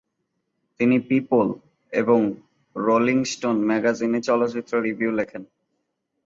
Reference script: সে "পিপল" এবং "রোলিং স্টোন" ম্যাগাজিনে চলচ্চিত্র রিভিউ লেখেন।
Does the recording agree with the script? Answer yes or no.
no